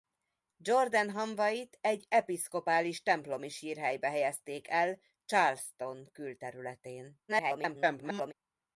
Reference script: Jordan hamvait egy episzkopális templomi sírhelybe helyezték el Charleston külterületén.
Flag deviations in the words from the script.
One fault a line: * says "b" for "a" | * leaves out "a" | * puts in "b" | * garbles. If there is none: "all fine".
* garbles